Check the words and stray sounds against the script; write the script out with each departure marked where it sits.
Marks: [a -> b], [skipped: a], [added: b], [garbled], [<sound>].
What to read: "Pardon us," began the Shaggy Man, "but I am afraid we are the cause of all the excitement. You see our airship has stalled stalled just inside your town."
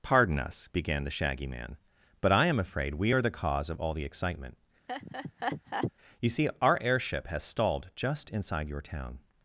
"Pardon us," began the Shaggy Man, "but I am afraid we are the cause of all the excitement. [laugh] You see our airship has stalled [skipped: stalled] just inside your town."